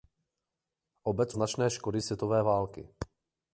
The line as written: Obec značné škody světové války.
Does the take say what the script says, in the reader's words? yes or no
yes